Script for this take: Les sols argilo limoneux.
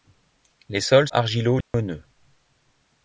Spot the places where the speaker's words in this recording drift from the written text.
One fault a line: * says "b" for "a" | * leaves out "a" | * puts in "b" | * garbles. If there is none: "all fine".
all fine